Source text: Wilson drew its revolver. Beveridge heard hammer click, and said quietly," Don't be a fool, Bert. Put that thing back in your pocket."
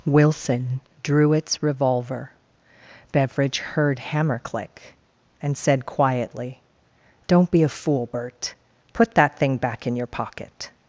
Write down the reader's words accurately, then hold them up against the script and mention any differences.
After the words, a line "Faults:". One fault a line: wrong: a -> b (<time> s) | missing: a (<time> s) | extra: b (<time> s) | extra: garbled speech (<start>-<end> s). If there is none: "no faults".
Wilson drew its revolver. Beveridge heard hammer click, and said quietly," Don't be a fool, Bert. Put that thing back in your pocket."
Faults:
no faults